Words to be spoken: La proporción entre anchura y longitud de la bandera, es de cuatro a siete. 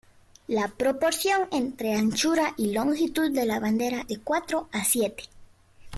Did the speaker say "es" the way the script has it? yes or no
no